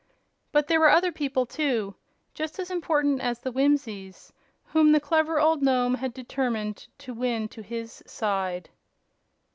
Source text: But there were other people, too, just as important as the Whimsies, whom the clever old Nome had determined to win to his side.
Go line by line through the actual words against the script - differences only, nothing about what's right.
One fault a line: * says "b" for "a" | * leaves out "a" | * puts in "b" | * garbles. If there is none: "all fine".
all fine